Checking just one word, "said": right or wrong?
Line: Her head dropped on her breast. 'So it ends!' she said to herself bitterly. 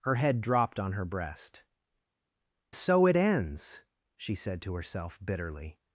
right